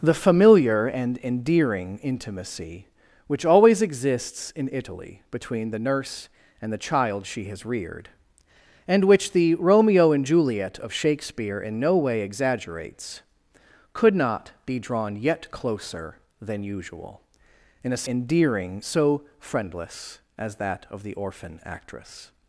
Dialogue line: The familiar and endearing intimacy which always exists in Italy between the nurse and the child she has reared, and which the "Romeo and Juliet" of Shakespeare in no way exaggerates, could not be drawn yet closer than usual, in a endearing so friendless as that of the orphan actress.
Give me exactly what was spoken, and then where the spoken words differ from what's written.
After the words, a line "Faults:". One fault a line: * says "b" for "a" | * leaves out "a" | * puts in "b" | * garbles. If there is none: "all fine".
The familiar and endearing intimacy which always exists in Italy between the nurse and the child she has reared, and which the "Romeo and Juliet" of Shakespeare in no way exaggerates, could not be drawn yet closer than usual, in a endearing so friendless as that of the orphan actress.
Faults:
all fine